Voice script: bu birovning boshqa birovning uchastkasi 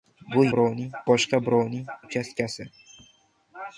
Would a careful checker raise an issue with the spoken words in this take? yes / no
no